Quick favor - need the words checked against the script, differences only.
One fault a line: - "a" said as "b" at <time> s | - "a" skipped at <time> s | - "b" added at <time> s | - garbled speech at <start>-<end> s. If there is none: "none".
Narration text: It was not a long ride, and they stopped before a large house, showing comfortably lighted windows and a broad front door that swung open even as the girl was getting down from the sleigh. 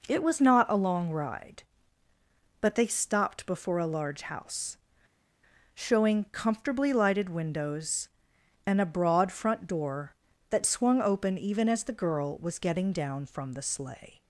- "and" said as "but" at 2.6 s